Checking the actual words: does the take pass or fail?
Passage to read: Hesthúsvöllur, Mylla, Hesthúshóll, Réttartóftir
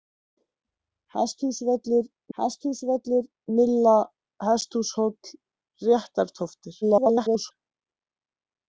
fail